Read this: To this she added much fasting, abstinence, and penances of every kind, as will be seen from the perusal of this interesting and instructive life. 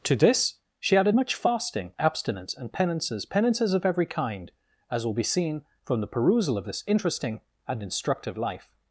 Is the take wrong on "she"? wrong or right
right